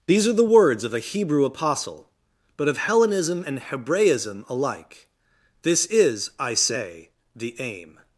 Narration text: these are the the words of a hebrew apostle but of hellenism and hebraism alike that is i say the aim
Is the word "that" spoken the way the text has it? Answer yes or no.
no